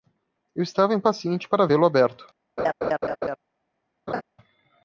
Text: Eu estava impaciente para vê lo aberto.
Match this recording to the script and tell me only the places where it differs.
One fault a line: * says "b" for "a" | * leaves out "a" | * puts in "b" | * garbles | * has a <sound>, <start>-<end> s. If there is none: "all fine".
* has a laugh, 2.6-3.4 s
* has a laugh, 4.1-4.2 s